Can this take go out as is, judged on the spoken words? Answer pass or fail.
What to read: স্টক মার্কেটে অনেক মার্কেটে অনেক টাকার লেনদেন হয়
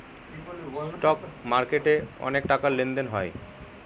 fail